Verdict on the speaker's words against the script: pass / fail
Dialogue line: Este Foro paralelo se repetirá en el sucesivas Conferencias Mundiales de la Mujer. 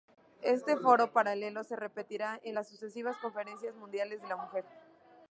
fail